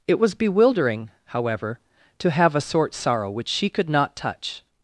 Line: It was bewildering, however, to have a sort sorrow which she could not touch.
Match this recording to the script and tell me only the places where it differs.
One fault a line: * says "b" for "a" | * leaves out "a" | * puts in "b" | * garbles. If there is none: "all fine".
all fine